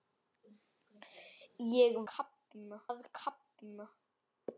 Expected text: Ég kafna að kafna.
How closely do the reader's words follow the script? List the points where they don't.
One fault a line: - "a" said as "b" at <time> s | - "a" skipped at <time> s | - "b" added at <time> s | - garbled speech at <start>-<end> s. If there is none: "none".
none